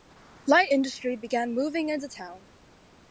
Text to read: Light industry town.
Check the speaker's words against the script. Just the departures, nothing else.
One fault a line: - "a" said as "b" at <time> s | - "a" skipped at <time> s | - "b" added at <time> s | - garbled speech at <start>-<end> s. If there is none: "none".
- "began moving into" added at 1.2 s